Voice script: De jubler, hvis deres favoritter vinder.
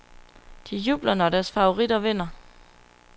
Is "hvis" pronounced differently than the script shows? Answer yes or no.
yes